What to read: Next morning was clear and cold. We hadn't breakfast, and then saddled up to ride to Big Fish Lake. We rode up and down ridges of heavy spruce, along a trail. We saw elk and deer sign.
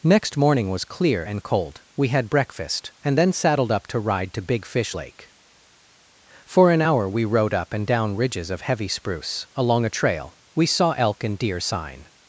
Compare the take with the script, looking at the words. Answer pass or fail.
fail